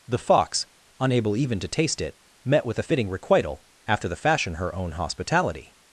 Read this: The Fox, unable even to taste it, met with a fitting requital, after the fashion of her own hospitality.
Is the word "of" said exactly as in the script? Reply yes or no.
no